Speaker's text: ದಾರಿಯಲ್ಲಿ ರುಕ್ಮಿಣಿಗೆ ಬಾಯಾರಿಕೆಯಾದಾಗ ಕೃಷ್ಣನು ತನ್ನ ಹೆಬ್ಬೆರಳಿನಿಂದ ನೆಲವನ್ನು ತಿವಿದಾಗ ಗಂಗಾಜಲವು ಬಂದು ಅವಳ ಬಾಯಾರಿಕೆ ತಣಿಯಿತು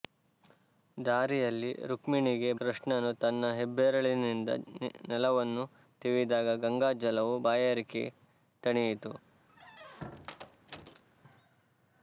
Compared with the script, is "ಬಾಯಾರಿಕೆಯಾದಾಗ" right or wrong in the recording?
wrong